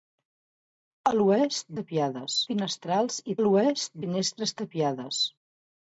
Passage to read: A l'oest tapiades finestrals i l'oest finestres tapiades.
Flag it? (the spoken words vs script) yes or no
no